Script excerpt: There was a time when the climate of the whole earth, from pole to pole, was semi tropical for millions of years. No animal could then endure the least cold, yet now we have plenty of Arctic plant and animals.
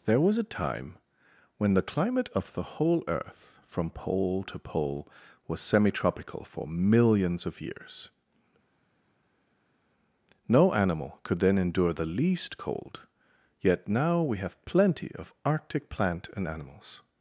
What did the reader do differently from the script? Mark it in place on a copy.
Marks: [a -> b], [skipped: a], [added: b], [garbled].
There was a time when the climate of the whole earth, from pole to pole, was semi tropical for millions of years. No animal could then endure the least cold, yet now we have plenty of Arctic plant and animals.